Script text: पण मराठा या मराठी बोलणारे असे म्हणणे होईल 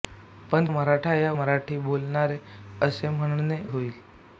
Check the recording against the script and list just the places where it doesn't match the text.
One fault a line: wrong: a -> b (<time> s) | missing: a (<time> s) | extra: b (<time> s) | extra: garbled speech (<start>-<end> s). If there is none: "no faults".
no faults